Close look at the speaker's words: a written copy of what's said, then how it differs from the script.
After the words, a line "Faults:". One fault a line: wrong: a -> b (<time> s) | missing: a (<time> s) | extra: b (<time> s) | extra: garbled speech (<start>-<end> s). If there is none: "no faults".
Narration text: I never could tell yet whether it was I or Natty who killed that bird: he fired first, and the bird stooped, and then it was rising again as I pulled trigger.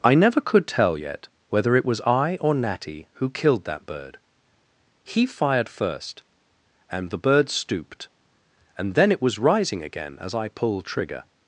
I never could tell yet whether it was I or Natty who killed that bird: he fired first, and the bird stooped, and then it was rising again as I pulled trigger.
Faults:
no faults